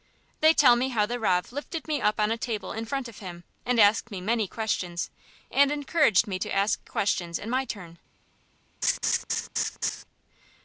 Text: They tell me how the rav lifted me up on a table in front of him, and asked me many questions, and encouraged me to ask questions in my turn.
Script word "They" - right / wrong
right